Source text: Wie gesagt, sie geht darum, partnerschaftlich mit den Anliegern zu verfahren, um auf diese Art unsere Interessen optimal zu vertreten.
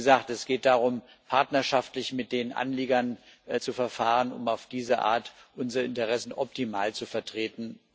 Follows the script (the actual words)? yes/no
no